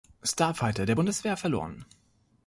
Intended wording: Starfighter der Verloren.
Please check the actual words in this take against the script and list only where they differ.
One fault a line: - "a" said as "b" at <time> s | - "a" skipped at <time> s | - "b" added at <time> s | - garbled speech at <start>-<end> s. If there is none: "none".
- "Bundeswehr" added at 0.9 s